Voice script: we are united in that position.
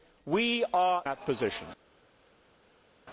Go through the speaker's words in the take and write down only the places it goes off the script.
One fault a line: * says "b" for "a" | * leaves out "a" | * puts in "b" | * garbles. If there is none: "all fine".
* leaves out "united in"